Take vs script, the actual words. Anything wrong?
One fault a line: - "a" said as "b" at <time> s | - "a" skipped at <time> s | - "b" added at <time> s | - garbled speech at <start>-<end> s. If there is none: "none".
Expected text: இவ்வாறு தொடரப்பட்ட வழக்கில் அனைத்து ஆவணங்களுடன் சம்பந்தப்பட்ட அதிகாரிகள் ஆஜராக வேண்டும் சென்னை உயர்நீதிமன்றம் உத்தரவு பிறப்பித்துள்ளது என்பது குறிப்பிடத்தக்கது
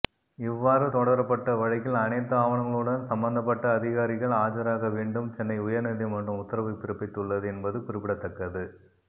none